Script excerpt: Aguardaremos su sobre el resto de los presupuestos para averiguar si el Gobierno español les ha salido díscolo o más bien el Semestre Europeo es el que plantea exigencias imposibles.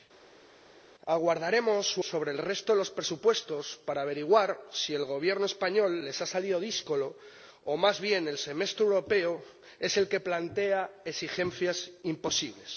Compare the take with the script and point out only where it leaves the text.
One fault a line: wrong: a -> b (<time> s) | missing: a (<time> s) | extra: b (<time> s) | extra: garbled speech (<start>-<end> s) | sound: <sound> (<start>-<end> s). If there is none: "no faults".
no faults